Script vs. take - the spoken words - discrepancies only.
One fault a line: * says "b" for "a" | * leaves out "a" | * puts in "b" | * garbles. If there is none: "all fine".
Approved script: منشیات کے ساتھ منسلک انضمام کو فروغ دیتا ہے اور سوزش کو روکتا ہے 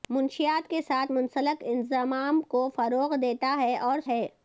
* leaves out "سوزش کو روکتا"